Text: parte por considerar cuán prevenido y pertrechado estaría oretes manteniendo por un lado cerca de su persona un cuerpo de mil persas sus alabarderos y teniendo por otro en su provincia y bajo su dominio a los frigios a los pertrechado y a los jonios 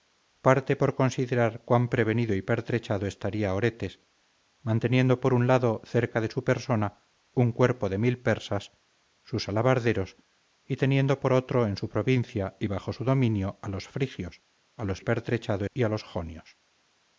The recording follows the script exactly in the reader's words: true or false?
true